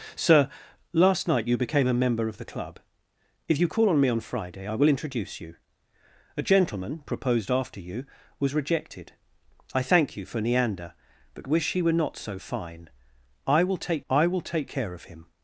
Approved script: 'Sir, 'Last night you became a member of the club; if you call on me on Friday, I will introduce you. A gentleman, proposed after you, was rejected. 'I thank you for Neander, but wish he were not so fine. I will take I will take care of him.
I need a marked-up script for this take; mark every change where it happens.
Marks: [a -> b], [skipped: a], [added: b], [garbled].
'Sir, 'Last night you became a member of the club; if you call on me on Friday, I will introduce you. A gentleman, proposed after you, was rejected. 'I thank you for Neander, but wish he were not so fine. I will take I will take care of him.